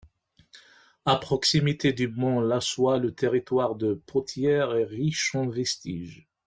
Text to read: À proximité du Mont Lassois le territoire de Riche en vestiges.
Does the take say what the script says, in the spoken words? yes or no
no